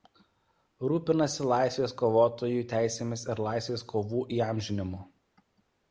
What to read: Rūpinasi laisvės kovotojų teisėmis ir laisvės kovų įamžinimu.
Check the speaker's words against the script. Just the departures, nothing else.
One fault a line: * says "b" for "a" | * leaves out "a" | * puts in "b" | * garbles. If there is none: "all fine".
all fine